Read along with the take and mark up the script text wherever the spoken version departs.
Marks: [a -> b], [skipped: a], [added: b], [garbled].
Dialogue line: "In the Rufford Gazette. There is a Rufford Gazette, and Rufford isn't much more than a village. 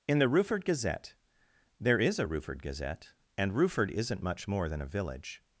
"In the Rufford Gazette. There is a Rufford Gazette, and Rufford isn't much more than a village.